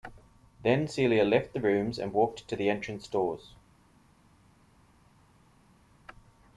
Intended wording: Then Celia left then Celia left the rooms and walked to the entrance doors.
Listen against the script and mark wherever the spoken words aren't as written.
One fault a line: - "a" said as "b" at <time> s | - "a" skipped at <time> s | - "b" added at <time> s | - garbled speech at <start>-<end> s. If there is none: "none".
- "then Celia left" skipped at 1.5 s